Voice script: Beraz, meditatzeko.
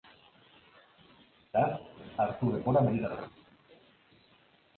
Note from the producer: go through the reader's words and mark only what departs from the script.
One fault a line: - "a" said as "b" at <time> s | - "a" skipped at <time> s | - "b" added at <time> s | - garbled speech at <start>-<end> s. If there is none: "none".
- "hartu denbora" added at 2.3 s